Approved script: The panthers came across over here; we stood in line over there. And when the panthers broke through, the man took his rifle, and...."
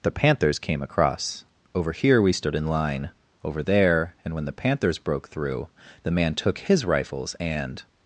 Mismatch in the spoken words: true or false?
true